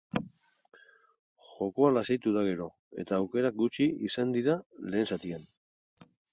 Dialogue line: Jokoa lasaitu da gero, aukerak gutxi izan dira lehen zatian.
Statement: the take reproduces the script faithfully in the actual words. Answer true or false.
false